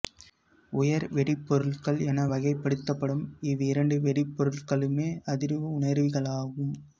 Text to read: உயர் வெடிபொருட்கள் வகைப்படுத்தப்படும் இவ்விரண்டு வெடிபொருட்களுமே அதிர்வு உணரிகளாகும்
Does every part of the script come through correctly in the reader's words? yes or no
no